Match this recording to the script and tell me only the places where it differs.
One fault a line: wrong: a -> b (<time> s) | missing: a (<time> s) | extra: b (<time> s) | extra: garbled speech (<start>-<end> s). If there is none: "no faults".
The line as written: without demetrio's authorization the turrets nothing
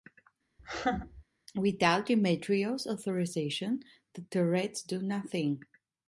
extra: do (4.8 s)